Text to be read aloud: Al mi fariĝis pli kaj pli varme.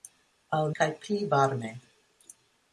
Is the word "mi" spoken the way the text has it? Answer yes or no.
no